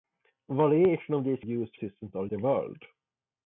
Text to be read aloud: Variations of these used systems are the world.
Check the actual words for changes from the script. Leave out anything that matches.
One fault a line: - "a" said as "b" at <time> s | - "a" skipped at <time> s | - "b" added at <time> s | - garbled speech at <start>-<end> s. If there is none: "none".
none